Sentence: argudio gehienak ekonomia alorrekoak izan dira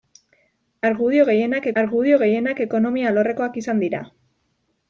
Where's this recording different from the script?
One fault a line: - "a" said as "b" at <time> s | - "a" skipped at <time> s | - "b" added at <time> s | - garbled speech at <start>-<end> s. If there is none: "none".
- "argudio gehienak" added at 1.8 s